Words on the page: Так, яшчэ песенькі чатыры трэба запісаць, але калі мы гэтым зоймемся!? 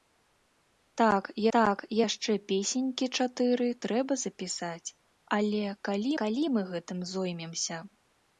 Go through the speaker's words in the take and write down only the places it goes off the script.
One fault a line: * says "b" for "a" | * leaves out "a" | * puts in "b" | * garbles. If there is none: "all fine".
* puts in "так"
* puts in "калі"